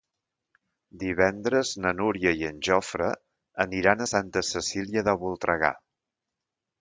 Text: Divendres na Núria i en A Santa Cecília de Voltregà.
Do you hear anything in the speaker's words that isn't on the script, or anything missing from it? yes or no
yes